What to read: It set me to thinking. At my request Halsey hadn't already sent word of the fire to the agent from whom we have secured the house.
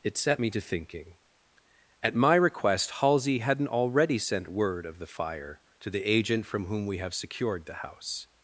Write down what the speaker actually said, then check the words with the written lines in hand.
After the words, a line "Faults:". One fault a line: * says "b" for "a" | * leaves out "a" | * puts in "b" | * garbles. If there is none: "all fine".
It set me to thinking. At my request Halsey hadn't already sent word of the fire to the agent from whom we have secured the house.
Faults:
all fine